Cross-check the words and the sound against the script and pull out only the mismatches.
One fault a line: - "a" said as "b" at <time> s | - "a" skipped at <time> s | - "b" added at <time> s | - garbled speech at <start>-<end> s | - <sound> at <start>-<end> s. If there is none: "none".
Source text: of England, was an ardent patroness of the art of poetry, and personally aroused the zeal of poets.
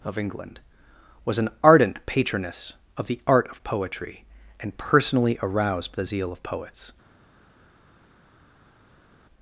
none